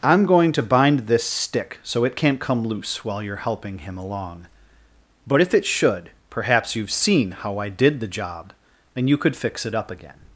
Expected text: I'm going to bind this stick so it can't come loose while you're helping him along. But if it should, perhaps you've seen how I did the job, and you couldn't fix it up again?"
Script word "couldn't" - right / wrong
wrong